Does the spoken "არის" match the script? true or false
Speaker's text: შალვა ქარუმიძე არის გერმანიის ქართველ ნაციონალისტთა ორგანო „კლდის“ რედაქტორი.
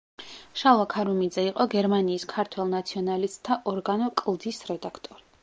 false